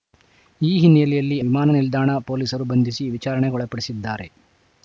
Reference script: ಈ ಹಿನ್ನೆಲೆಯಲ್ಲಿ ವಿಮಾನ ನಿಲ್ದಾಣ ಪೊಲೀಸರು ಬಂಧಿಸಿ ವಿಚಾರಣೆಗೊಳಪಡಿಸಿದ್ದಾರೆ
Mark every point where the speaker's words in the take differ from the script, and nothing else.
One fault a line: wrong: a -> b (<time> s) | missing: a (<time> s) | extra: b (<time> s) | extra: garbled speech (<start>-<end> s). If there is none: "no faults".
no faults